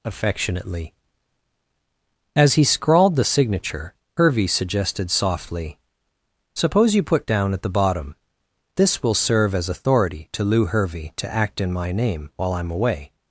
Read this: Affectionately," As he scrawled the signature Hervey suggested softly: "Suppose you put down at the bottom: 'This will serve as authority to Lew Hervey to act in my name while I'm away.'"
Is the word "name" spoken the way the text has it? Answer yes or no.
yes